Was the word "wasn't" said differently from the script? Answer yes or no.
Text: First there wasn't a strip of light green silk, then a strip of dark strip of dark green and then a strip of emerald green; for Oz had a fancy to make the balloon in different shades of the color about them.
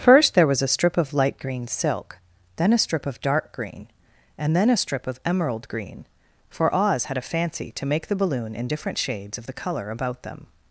yes